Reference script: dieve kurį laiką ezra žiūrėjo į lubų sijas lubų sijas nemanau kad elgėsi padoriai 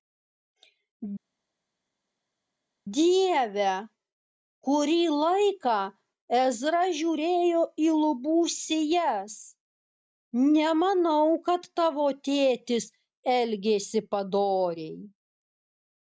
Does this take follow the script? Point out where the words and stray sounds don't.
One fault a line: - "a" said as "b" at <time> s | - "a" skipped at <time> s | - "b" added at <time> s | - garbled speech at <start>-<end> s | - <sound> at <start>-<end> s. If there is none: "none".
- "lubų sijas nemanau kad" said as "nemanau kad tavo tėtis" at 10.6 s